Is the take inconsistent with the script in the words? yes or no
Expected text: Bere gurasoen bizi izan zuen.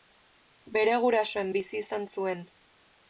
no